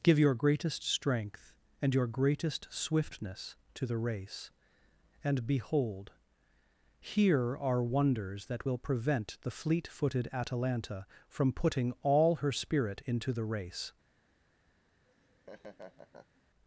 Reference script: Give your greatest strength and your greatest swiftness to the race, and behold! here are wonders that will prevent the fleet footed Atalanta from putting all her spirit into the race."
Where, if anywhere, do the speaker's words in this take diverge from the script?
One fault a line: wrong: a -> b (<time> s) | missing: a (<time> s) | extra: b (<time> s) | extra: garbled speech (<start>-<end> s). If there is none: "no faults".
no faults